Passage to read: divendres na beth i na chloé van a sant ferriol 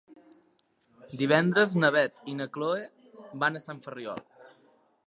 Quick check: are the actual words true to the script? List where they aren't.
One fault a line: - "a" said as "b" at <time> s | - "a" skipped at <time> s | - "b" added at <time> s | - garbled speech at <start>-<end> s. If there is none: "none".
none